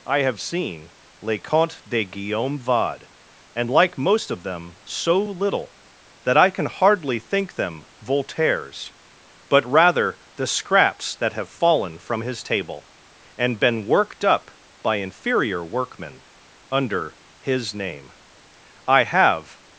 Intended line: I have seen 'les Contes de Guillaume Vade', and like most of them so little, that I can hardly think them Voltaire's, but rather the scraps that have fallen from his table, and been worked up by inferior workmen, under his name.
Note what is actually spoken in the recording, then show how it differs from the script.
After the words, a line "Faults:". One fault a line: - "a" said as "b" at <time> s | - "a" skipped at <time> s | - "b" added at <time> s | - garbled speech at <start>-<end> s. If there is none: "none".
I have seen 'les Contes de Guillaume Vade', and like most of them so little, that I can hardly think them Voltaire's, but rather the scraps that have fallen from his table, and been worked up by inferior workmen, under his name. I have
Faults:
- "I have" added at 18.9 s